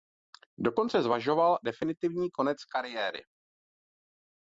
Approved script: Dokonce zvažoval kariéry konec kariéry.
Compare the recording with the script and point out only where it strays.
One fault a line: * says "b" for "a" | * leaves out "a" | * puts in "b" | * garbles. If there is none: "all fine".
* says "definitivní" for "kariéry"